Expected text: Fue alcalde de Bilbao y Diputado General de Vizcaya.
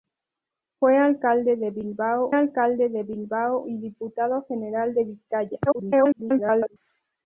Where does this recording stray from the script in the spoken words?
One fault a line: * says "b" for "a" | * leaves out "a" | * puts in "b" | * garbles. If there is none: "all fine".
* puts in "alcalde de Bilbao"
* garbles